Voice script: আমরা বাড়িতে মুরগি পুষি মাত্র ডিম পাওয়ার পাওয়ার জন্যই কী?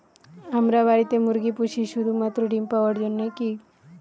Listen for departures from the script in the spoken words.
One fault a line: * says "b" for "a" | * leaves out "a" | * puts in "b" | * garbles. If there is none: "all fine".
* puts in "শুধু"
* leaves out "পাওয়ার"